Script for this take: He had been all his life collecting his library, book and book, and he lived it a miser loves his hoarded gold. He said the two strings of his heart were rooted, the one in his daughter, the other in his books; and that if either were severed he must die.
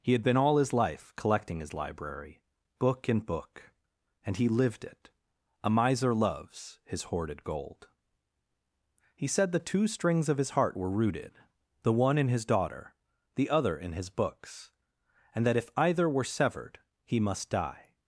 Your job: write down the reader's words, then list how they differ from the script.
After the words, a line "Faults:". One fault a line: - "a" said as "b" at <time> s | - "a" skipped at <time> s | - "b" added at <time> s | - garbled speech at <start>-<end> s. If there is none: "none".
He had been all his life collecting his library, book and book, and he lived it a miser loves his hoarded gold. He said the two strings of his heart were rooted, the one in his daughter, the other in his books; and that if either were severed he must die.
Faults:
none